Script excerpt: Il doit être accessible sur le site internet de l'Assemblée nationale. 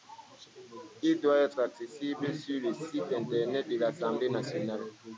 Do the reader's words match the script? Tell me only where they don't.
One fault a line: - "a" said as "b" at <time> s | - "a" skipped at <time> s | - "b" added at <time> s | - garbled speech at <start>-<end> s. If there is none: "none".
none